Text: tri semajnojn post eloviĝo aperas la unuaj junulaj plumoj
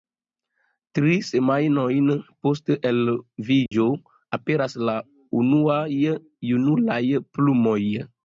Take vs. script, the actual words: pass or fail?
pass